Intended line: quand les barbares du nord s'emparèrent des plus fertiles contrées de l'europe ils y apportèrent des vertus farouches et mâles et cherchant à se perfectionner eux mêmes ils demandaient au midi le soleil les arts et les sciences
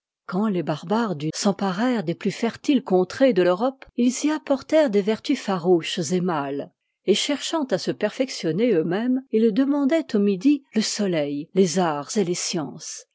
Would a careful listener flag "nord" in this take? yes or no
yes